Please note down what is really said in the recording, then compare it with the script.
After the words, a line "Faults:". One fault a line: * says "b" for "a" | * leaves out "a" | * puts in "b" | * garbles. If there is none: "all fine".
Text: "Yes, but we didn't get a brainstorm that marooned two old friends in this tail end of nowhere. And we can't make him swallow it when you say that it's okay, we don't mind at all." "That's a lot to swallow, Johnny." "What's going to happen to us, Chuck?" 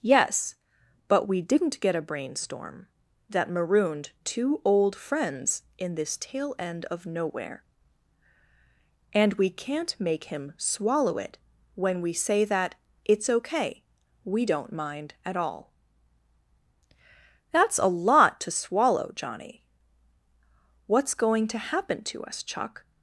"Yes, but we didn't get a brainstorm that marooned two old friends in this tail end of nowhere. And we can't make him swallow it when we say that it's okay, we don't mind at all." "That's a lot to swallow, Johnny." "What's going to happen to us, Chuck?"
Faults:
* says "we" for "you"